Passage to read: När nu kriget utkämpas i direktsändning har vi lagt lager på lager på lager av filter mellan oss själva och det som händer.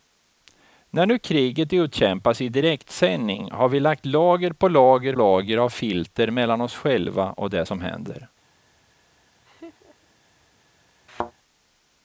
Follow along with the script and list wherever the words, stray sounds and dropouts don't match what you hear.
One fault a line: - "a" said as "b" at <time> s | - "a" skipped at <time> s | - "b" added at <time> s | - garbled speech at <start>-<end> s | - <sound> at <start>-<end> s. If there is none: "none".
- "på" skipped at 5.2 s
- laugh at 9.4-10.1 s
- thud at 11.1-11.3 s